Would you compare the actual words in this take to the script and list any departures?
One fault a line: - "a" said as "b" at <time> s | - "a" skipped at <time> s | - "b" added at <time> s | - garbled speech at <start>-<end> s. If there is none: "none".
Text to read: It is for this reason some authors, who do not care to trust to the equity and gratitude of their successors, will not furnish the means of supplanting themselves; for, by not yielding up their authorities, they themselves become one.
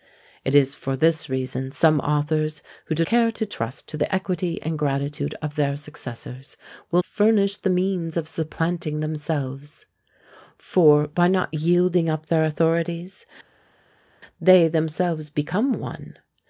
- "not" skipped at 3.0 s
- "not" skipped at 7.0 s